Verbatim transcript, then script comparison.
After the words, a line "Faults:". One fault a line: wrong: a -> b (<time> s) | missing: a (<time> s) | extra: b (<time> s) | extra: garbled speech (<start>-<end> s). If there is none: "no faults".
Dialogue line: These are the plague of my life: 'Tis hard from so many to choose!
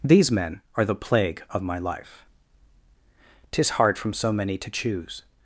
These men are the plague of my life: 'Tis hard from so many to choose!
Faults:
extra: men (0.3 s)